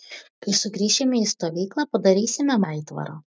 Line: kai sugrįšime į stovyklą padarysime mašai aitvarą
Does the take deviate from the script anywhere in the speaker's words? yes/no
yes